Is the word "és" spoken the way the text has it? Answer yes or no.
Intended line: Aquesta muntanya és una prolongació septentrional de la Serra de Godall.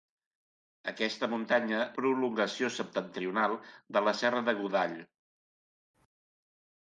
no